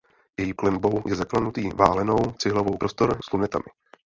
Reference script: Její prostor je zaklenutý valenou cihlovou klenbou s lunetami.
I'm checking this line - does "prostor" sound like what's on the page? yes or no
no